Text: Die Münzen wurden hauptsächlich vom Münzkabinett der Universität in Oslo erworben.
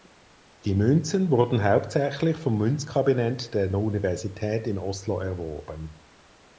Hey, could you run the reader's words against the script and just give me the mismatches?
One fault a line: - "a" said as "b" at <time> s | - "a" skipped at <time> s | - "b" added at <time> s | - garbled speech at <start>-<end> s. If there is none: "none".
none